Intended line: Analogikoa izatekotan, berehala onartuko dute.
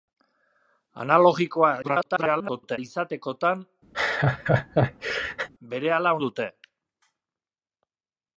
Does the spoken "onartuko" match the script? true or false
false